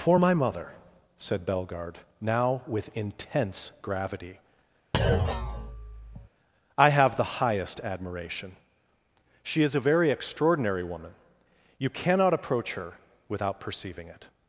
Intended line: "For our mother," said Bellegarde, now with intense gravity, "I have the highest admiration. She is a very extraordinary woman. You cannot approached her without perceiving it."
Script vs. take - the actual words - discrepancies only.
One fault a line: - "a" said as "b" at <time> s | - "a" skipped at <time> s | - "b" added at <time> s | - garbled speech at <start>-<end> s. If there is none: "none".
- "our" said as "my" at 0.1 s
- "approached" said as "approach" at 12.3 s